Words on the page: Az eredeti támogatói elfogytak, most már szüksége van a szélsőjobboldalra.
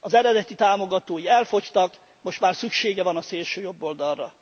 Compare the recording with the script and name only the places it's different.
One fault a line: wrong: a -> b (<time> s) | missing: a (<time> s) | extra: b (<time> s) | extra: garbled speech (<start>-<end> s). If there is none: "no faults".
no faults